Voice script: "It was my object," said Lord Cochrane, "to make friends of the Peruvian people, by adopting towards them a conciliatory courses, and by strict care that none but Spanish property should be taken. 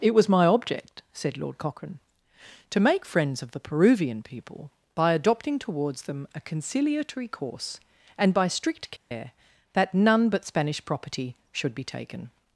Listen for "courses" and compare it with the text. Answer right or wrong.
wrong